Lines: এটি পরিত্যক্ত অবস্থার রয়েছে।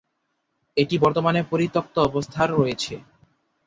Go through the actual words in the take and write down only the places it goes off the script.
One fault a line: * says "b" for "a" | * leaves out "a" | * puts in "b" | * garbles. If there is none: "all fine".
* puts in "বর্তমানে"